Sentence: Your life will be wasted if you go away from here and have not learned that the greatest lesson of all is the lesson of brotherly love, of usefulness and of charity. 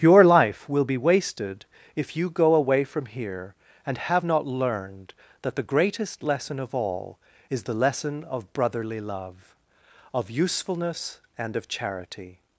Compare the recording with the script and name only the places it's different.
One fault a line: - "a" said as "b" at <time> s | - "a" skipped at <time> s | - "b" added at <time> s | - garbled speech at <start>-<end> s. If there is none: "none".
none